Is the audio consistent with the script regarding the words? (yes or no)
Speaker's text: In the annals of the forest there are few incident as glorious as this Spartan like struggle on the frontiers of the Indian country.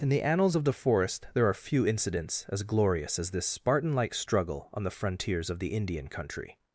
no